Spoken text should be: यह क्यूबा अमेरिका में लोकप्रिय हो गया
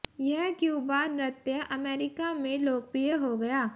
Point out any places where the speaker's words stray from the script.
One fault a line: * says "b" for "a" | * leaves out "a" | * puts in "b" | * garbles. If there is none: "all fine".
* puts in "नृत्य"